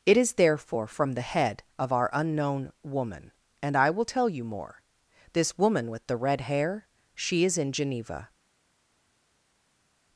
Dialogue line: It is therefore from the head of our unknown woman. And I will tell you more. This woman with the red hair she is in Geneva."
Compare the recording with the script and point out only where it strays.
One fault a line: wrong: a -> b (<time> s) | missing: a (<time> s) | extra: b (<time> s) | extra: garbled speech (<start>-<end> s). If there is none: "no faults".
no faults